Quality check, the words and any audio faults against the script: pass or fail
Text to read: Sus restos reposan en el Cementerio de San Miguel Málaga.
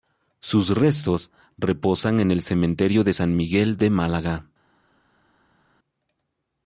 fail